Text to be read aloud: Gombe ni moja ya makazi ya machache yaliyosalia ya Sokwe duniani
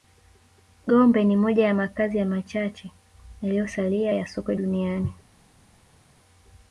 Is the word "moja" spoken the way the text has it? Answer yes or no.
yes